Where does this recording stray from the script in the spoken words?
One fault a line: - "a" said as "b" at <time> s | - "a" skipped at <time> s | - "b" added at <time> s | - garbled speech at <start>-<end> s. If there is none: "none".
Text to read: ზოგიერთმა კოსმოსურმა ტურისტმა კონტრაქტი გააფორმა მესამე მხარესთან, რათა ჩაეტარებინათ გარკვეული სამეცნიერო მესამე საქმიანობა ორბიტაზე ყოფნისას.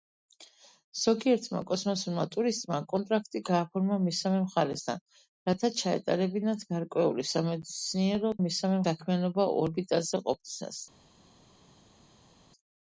none